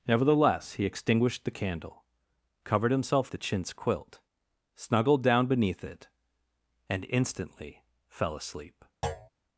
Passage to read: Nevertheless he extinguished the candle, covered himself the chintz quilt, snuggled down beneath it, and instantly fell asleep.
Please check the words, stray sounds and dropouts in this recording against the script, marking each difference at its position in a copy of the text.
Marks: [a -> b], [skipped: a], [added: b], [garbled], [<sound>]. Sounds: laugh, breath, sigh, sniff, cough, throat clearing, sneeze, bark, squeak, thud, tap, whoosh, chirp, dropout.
Nevertheless he extinguished the candle, covered himself the chintz quilt, snuggled down beneath it, and instantly fell asleep. [thud]